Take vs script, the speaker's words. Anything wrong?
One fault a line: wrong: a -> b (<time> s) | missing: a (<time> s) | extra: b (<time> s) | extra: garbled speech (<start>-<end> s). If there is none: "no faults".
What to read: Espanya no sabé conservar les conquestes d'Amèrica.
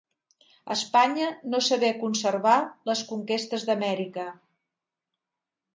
no faults